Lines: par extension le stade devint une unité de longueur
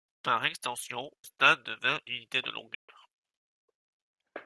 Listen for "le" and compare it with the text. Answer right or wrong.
wrong